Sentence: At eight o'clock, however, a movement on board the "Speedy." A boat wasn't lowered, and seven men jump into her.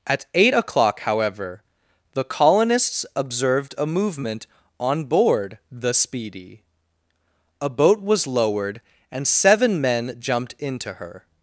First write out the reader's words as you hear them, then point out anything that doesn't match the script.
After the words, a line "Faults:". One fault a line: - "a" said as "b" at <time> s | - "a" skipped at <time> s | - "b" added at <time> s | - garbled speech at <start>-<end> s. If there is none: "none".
At eight o'clock, however, the colonists observed a movement on board the "Speedy." A boat was lowered, and seven men jumped into her.
Faults:
- "the colonists observed" added at 2.1 s
- "wasn't" said as "was" at 8.0 s
- "jump" said as "jumped" at 10.2 s